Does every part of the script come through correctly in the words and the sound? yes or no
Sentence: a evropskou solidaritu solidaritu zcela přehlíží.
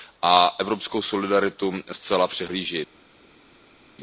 no